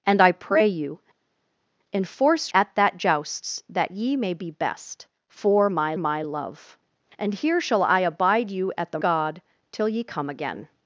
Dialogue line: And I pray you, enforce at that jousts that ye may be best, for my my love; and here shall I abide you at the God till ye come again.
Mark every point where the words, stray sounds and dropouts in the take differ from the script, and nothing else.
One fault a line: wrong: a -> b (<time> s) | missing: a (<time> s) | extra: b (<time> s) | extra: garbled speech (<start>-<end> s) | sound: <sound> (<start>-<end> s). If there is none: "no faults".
no faults